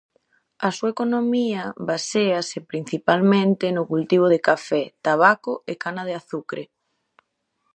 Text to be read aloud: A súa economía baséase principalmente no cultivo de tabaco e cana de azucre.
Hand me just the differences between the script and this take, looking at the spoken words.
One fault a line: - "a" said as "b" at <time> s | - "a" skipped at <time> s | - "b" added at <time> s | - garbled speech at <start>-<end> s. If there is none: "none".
- "café" added at 4.5 s